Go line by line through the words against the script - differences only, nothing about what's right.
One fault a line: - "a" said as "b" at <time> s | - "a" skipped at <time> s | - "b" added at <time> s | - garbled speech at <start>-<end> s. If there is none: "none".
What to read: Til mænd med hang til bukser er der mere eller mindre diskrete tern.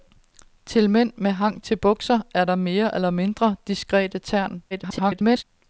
- garbled speech at 4.7-5.4 s